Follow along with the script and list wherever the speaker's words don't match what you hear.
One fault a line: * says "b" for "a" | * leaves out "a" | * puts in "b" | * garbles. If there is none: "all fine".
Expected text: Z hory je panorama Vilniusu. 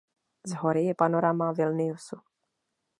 all fine